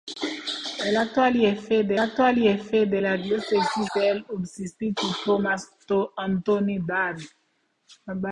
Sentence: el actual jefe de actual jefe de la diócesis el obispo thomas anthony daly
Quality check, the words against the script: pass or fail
pass